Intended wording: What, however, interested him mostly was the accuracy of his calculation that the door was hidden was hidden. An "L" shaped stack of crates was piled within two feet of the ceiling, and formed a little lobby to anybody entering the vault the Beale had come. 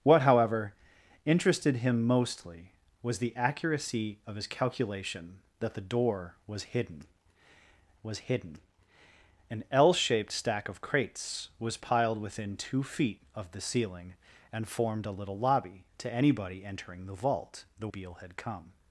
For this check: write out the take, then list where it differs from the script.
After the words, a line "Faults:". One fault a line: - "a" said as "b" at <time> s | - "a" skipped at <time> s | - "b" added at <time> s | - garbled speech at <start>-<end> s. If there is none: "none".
What, however, interested him mostly was the accuracy of his calculation that the door was hidden was hidden. An "L" shaped stack of crates was piled within two feet of the ceiling, and formed a little lobby to anybody entering the vault the Beale had come.
Faults:
none